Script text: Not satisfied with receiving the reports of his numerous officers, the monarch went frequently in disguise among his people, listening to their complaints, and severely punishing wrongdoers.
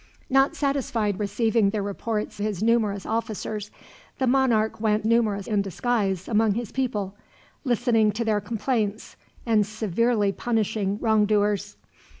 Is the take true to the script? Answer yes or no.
no